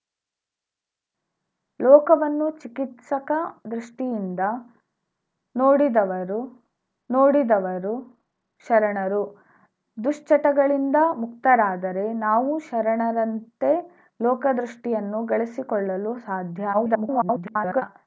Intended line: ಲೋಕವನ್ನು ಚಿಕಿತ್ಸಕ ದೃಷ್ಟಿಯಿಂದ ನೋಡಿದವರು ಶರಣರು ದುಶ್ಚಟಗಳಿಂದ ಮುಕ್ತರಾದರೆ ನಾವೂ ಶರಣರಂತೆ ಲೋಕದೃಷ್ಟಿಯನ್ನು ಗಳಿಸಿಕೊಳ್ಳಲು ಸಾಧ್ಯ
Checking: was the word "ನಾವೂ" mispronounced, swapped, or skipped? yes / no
no